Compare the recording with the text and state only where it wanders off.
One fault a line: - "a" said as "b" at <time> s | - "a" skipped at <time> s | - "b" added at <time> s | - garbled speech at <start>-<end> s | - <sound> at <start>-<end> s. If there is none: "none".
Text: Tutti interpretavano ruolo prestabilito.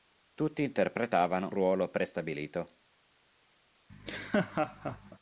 - laugh at 3.9-5.2 s